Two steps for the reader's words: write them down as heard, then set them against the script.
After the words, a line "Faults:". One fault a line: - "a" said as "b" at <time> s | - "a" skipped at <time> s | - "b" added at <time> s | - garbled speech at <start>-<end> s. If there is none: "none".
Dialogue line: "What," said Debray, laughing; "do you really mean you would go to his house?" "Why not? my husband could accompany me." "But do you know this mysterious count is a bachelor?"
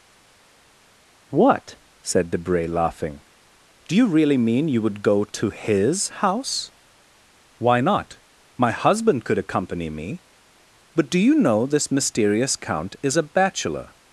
"What," said Debray, laughing; "do you really mean you would go to his house?" "Why not? my husband could accompany me." "But do you know this mysterious count is a bachelor?"
Faults:
none